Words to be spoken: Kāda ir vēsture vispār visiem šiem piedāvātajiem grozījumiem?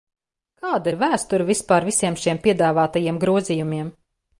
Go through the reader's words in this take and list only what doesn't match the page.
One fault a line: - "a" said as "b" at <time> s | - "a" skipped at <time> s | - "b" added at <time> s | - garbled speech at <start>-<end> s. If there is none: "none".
none